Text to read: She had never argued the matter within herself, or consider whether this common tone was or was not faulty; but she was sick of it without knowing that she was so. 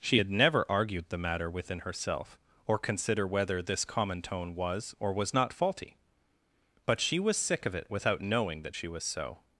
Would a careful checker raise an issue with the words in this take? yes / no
no